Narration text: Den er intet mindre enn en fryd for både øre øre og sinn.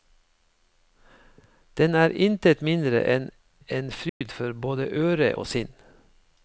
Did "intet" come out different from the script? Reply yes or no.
no